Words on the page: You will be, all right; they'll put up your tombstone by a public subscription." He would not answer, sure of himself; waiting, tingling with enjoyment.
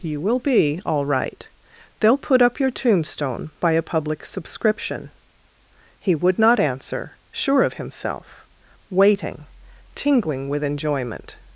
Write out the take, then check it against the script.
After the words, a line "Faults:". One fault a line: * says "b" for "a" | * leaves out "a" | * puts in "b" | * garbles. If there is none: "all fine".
You will be, all right; they'll put up your tombstone by a public subscription." He would not answer, sure of himself; waiting, tingling with enjoyment.
Faults:
all fine